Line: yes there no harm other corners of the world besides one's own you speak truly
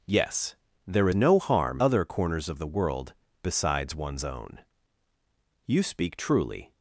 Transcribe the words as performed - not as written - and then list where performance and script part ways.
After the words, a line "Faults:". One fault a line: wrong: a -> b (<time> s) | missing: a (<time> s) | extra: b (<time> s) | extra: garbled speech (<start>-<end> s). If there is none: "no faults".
yes there no harm other corners of the world besides one's own you speak truly
Faults:
no faults